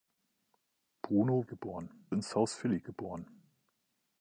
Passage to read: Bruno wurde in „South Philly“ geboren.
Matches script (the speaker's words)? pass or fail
fail